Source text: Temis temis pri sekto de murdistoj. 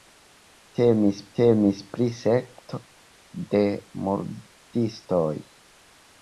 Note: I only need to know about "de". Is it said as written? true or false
true